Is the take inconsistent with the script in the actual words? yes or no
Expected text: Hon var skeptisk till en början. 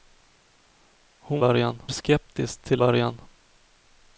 yes